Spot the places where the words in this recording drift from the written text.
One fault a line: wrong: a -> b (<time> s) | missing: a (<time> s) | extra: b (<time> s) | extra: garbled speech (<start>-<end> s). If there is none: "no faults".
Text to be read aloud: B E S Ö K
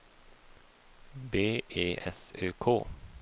no faults